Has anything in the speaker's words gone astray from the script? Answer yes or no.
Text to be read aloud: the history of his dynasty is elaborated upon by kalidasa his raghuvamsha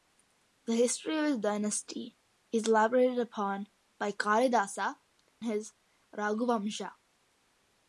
no